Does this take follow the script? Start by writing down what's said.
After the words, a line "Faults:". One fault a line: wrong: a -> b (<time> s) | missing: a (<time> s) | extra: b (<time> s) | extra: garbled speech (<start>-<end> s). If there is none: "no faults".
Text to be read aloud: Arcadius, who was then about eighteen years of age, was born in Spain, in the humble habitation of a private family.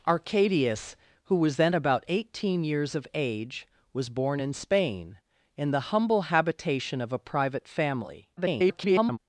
Arcadius, who was then about eighteen years of age, was born in Spain, in the humble habitation of a private family. [garbled]
Faults:
extra: garbled speech (8.4-9.2 s)